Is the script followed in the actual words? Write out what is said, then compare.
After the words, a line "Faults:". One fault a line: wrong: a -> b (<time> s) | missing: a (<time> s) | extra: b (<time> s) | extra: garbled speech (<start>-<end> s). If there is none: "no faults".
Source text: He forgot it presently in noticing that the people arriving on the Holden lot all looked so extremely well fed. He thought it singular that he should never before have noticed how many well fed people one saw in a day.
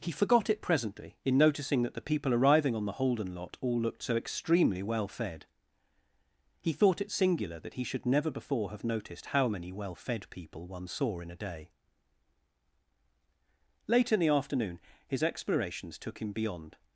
He forgot it presently in noticing that the people arriving on the Holden lot all looked so extremely well fed. He thought it singular that he should never before have noticed how many well fed people one saw in a day. Late in the afternoon his explorations took him beyond
Faults:
extra: Late in the afternoon his explorations took him beyond (13.9 s)